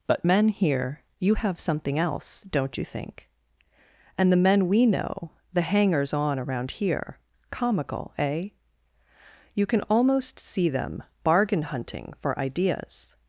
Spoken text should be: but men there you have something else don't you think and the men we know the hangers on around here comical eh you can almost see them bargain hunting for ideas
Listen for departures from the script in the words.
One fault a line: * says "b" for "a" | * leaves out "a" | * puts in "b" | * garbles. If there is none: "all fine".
* says "here" for "there"